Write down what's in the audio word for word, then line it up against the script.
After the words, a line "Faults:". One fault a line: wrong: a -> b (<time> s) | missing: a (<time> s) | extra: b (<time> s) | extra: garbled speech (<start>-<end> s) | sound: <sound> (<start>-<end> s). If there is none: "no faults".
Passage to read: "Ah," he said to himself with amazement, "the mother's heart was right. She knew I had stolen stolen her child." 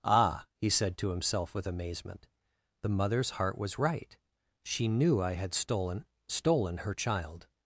"Ah," he said to himself with amazement, "the mother's heart was right. She knew I had stolen stolen her child."
Faults:
no faults